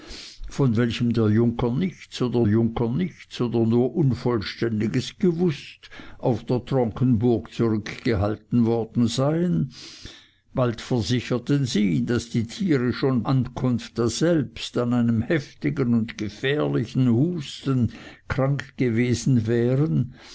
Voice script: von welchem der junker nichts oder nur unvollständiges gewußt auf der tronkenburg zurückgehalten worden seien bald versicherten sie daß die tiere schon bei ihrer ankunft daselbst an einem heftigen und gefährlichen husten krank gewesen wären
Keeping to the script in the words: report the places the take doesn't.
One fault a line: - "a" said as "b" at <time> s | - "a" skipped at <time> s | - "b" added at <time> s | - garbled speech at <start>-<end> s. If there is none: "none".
- "junker nichts oder" added at 2.5 s
- "bei ihrer" skipped at 13.2 s